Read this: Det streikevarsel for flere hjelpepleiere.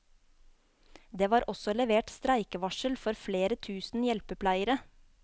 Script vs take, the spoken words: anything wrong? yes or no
yes